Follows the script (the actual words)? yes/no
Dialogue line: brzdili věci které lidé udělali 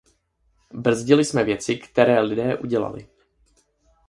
no